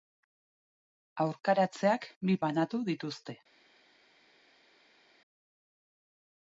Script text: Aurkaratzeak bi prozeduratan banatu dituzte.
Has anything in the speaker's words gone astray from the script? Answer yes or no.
yes